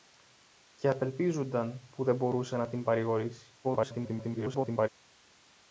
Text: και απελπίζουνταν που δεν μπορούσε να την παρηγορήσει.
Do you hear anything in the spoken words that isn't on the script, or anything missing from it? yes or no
yes